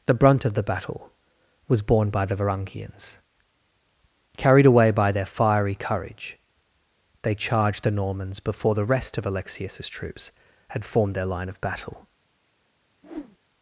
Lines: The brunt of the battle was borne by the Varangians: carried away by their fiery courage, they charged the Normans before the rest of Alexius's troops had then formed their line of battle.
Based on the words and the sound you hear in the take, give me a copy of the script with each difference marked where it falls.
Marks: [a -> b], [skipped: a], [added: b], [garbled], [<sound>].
The brunt of the battle was borne by the Varangians: carried away by their fiery courage, they charged the Normans before the rest of Alexius's troops had [skipped: then] formed their line of battle. [whoosh]